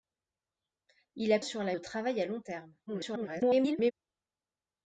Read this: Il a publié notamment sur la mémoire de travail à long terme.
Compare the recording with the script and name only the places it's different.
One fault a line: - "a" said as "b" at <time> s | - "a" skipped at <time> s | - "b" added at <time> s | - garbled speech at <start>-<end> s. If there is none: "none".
- "publié notamment" skipped at 1.4 s
- "mémoire" skipped at 1.8 s
- garbled speech at 2.9-3.9 s